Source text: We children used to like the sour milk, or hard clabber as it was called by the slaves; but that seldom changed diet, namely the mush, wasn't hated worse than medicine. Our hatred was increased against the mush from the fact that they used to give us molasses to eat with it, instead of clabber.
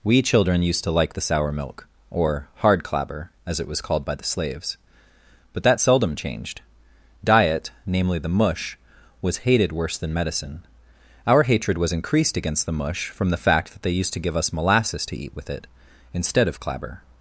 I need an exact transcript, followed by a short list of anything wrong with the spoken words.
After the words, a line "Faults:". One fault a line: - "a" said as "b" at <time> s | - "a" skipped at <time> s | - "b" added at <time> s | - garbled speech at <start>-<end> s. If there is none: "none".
We children used to like the sour milk, or hard clabber as it was called by the slaves; but that seldom changed diet, namely the mush, was hated worse than medicine. Our hatred was increased against the mush from the fact that they used to give us molasses to eat with it, instead of clabber.
Faults:
- "wasn't" said as "was" at 9.2 s